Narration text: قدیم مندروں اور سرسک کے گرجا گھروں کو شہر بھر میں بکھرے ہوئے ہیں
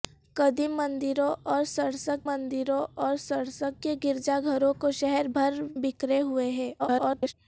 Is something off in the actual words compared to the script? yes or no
yes